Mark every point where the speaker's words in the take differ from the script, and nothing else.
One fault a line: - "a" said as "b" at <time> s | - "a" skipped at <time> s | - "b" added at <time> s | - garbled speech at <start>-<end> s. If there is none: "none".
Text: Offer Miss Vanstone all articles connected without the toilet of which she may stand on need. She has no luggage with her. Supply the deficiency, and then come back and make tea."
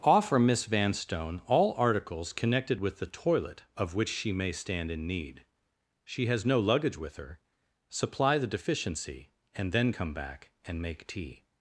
- "without" said as "with" at 2.8 s
- "on" said as "in" at 4.9 s